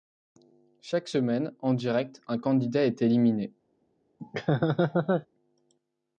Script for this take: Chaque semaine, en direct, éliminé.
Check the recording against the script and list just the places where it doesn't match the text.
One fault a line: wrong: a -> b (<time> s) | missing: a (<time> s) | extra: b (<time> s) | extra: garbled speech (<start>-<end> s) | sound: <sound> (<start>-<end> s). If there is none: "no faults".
extra: un candidat est (2.3 s)
sound: laugh (4.2-5.3 s)